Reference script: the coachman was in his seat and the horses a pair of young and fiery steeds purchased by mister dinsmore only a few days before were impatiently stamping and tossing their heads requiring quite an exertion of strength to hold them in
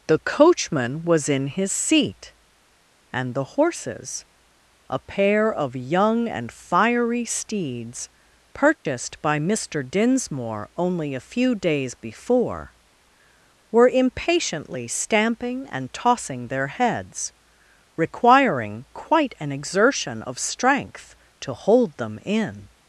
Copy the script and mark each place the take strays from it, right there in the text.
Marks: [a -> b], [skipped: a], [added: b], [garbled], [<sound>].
the coachman was in his seat and the horses a pair of young and fiery steeds purchased [dropout] by mister dinsmore only a few days before were impatiently stamping and tossing their heads requiring quite an exertion of strength to hold them in